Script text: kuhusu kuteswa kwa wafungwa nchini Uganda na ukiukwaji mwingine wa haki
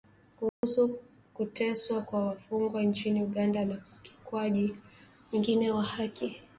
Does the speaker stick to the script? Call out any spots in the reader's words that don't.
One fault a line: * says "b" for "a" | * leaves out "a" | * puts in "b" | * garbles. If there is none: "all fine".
all fine